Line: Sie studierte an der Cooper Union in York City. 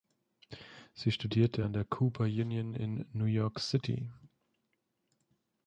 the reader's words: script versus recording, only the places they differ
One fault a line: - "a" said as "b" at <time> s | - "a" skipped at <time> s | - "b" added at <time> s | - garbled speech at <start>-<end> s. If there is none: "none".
- "New" added at 3.1 s